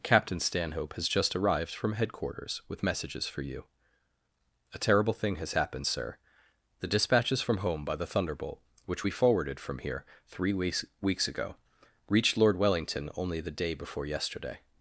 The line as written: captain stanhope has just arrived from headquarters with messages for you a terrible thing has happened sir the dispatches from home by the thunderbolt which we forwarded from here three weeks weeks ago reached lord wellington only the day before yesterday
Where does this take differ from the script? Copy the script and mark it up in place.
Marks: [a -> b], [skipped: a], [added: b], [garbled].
captain stanhope has just arrived from headquarters with messages for you a terrible thing has happened sir the dispatches from home by the thunderbolt which we forwarded from here three weeks weeks ago reached lord wellington only the day before yesterday